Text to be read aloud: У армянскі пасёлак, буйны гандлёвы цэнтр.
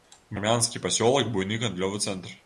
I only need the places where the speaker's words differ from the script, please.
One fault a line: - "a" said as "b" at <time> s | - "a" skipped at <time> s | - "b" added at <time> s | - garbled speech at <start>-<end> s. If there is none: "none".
none